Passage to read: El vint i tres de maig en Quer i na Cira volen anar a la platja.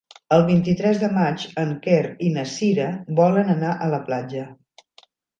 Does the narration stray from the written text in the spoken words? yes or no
no